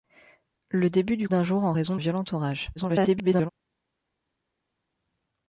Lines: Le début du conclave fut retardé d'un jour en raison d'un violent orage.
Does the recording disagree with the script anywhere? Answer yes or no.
yes